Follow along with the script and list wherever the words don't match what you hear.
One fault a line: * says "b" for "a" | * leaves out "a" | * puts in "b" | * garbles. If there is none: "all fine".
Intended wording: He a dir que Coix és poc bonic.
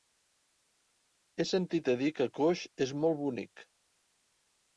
* puts in "sentit"
* says "molt" for "poc"